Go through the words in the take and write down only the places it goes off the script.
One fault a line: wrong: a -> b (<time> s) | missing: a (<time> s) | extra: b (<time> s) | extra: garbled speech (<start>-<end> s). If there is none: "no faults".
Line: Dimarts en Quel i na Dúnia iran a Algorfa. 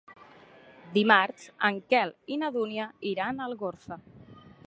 no faults